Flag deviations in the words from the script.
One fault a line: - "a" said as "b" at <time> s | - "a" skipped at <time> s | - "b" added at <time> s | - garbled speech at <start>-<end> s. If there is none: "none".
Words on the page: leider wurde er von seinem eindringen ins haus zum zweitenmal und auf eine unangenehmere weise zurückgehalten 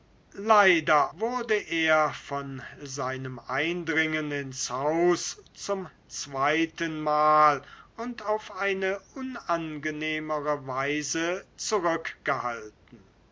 none